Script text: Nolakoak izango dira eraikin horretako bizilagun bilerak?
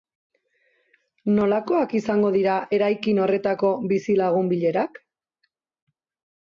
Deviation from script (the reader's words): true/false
false